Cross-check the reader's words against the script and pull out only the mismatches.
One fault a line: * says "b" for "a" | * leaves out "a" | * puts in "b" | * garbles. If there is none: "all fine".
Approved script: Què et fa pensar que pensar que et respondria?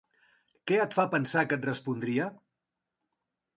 * leaves out "pensar que"